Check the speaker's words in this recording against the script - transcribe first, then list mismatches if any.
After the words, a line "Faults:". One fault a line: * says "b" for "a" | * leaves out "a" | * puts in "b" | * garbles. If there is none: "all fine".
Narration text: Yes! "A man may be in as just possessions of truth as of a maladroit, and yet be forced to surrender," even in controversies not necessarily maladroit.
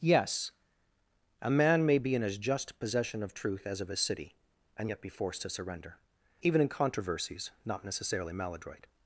Yes! "A man may be in as just possession of truth as of a city, and yet be forced to surrender," even in controversies not necessarily maladroit.
Faults:
* says "possession" for "possessions"
* says "city" for "maladroit"